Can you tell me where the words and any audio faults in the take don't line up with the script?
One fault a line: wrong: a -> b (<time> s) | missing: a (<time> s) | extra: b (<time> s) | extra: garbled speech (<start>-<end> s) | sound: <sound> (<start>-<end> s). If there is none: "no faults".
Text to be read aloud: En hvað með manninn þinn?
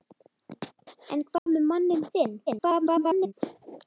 sound: dropout (1.4-1.5 s)
extra: garbled speech (2.5-3.3 s)